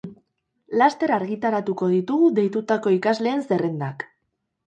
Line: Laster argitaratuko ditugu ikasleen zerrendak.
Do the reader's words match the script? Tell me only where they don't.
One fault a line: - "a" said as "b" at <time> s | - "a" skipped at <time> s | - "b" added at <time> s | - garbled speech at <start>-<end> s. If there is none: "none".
- "deitutako" added at 2.4 s